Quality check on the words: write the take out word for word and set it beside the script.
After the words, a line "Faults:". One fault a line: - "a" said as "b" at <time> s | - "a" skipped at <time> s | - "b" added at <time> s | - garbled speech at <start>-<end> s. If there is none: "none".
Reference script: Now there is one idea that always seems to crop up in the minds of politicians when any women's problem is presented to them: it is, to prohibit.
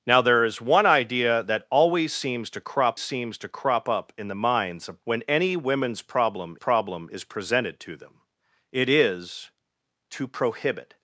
Now there is one idea that always seems to crop seems to crop up in the minds of when any women's problem problem is presented to them: it is, to prohibit.
Faults:
- "seems to crop" added at 3.0 s
- "politicians" skipped at 5.0 s
- "problem" added at 6.5 s